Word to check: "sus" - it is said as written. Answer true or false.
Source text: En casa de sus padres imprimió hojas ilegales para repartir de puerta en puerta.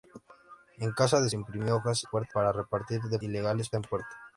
false